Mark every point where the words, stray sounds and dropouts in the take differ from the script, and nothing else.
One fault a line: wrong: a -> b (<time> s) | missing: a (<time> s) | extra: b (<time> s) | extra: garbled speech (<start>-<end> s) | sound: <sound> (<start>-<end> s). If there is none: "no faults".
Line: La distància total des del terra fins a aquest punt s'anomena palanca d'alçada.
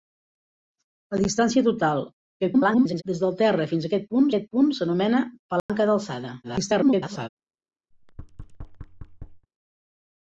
extra: garbled speech (2.4-3.0 s)
extra: aquest punt (4.3 s)
sound: dropout (5.6-5.7 s)
extra: garbled speech (6.4-7.3 s)
sound: thud (7.9-9.5 s)